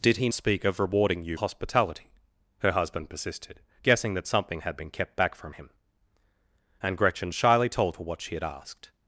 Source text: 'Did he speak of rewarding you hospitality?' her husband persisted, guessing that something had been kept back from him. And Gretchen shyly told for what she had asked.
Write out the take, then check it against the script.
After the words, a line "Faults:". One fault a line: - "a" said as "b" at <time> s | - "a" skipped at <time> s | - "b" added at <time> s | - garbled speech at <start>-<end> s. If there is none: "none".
'Did he speak of rewarding you hospitality?' her husband persisted, guessing that something had been kept back from him. And Gretchen shyly told for what she had asked.
Faults:
none